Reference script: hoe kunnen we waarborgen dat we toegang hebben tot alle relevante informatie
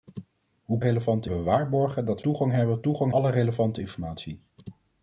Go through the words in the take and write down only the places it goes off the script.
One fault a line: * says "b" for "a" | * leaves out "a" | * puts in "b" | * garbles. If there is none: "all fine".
* says "relevante" for "kunnen"
* leaves out "we"
* says "toegang" for "tot"